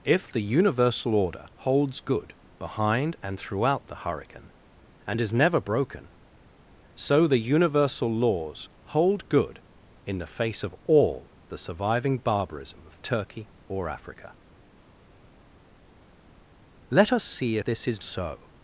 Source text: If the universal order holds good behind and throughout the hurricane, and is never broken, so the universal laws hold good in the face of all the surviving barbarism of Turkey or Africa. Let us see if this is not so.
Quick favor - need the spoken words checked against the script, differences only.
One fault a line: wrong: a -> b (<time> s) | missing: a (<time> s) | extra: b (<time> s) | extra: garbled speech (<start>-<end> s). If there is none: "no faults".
missing: if (17.6 s)
missing: not (18.0 s)